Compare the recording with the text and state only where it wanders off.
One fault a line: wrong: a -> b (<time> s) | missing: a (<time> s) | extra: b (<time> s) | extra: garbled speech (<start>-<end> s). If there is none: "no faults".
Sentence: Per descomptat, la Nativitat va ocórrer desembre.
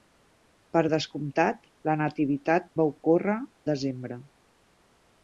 no faults